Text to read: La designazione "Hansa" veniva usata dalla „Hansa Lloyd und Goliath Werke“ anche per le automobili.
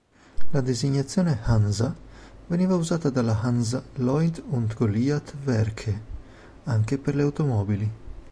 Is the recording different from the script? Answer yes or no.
no